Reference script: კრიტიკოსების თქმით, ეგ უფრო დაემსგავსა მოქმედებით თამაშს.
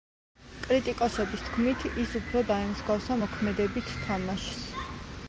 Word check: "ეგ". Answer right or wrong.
wrong